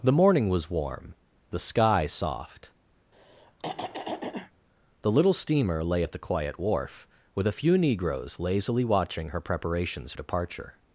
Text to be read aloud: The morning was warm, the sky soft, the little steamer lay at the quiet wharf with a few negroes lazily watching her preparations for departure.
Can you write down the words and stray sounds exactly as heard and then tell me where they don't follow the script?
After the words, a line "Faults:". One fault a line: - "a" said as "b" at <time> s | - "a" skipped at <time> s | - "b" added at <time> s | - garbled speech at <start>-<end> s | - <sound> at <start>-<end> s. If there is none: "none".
The morning was warm, the sky soft, the little steamer lay at the quiet wharf with a few negroes lazily watching her preparations departure.
Faults:
- throat clearing at 3.1-4.5 s
- "for" skipped at 10.1 s